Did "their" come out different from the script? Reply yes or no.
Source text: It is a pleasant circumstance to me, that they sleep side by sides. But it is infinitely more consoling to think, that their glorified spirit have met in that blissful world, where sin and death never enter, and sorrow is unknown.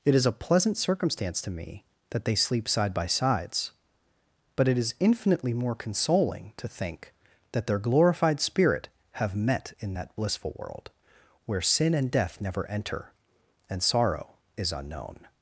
no